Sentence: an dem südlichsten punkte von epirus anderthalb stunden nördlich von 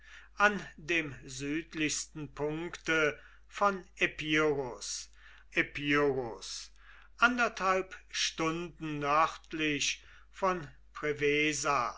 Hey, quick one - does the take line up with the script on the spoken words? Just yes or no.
no